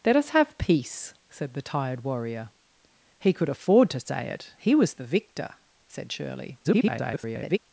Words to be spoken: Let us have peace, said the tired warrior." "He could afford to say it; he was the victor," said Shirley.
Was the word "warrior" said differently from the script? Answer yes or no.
no